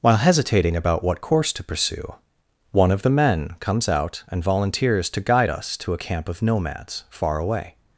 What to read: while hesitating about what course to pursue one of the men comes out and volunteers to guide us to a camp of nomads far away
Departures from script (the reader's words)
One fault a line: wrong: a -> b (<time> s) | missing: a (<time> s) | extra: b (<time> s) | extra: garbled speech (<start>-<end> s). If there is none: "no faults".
no faults